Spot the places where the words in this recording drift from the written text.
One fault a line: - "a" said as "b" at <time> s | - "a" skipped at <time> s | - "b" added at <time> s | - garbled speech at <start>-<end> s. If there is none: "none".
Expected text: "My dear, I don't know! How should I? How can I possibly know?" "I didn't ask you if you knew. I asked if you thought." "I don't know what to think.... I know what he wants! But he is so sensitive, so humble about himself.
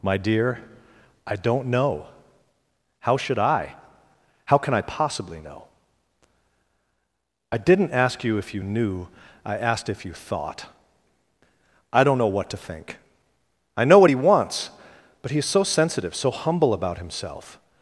none